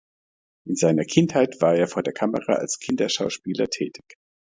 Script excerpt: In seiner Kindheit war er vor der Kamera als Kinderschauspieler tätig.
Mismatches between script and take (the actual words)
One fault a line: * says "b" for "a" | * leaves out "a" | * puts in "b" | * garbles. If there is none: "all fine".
all fine